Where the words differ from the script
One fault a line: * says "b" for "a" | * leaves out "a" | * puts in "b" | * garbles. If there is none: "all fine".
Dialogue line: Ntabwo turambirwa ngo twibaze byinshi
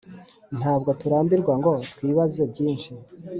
all fine